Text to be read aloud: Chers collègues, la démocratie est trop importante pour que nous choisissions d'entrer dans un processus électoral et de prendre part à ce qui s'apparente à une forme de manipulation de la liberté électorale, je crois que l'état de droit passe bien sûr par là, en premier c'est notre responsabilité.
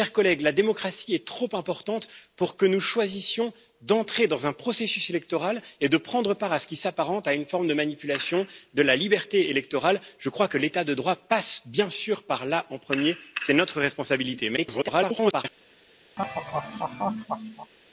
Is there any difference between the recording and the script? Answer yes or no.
yes